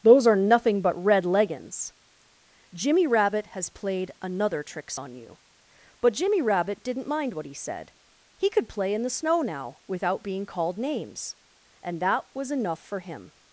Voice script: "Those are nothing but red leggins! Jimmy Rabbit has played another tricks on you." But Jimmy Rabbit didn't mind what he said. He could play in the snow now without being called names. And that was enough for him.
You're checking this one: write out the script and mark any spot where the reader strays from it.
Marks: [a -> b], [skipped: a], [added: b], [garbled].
"Those are nothing but red leggins! Jimmy Rabbit has played another tricks on you." But Jimmy Rabbit didn't mind what he said. He could play in the snow now without being called names. And that was enough for him.